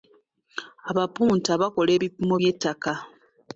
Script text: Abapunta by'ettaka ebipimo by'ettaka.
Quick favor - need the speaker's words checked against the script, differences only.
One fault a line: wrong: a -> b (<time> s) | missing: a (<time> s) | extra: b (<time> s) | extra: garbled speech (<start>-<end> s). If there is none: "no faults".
wrong: by'ettaka -> bakola (1.6 s)